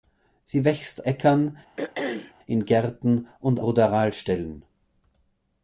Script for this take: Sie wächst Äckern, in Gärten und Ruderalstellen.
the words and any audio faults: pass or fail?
fail